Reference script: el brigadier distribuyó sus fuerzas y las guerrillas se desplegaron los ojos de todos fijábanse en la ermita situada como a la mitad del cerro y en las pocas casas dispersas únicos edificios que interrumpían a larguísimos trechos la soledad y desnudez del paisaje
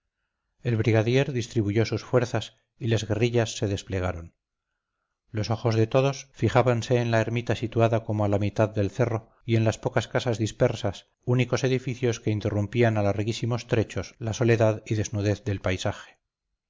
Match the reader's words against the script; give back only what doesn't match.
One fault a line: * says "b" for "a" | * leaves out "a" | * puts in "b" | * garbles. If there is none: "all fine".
all fine